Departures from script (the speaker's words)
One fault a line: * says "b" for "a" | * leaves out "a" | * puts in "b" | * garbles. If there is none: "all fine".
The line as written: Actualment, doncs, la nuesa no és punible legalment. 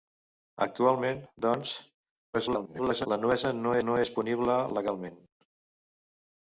* garbles
* puts in "no"